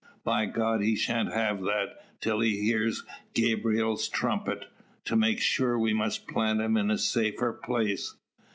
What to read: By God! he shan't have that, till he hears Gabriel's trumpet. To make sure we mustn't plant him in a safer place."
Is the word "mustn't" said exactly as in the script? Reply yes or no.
no